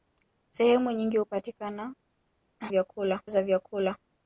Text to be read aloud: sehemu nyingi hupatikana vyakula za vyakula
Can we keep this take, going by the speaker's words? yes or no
yes